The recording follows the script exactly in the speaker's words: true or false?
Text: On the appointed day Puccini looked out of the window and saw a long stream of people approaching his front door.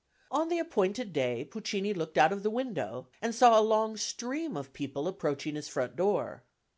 true